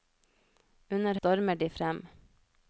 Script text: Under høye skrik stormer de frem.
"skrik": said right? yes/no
no